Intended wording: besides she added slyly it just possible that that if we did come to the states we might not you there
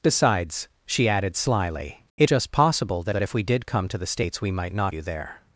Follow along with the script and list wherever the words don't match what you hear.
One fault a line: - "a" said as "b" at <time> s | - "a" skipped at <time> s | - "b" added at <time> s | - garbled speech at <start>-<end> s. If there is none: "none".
none